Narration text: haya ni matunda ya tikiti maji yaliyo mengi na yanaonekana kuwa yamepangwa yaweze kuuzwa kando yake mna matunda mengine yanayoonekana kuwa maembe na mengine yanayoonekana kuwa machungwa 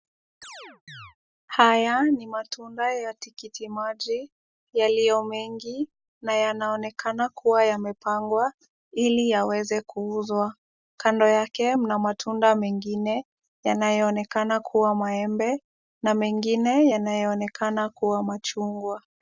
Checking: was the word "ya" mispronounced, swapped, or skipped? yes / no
no